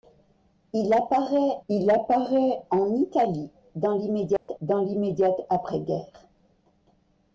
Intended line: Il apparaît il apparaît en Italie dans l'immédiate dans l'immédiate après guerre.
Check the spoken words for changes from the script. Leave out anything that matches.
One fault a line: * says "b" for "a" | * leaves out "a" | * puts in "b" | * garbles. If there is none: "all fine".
all fine